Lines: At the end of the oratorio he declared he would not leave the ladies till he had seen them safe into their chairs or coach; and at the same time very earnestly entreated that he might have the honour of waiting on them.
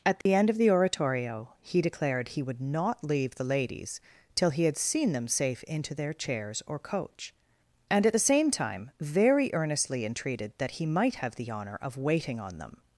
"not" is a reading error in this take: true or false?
false